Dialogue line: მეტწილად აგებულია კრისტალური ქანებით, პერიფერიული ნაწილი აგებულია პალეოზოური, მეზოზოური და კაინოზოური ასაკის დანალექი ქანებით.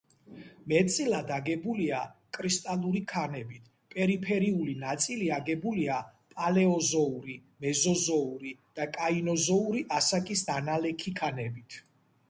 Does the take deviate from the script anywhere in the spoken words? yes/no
no